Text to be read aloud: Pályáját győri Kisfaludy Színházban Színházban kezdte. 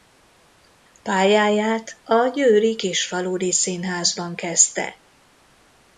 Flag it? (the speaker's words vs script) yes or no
yes